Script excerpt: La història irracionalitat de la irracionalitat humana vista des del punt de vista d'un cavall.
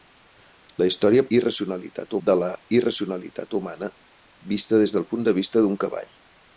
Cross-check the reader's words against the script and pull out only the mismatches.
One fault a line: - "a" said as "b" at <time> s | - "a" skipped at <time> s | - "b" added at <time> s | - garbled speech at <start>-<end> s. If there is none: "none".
none